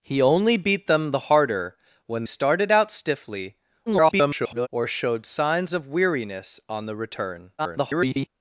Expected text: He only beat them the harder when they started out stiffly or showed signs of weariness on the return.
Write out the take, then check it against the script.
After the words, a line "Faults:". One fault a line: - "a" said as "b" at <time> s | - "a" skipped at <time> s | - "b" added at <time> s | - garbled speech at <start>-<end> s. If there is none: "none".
He only beat them the harder when started out stiffly [garbled] or showed signs of weariness on the return. [garbled]
Faults:
- "they" skipped at 2.2 s
- garbled speech at 3.9-4.7 s
- garbled speech at 7.6-8.3 s